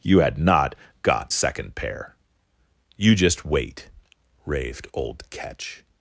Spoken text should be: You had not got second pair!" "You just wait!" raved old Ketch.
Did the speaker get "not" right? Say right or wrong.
right